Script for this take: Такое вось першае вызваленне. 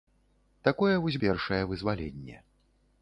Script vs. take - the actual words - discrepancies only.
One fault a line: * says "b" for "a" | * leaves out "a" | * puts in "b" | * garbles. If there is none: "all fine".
all fine